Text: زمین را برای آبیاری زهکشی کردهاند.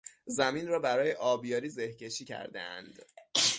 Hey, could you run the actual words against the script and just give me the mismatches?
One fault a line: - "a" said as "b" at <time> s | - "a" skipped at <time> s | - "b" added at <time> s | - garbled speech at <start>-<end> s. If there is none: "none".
none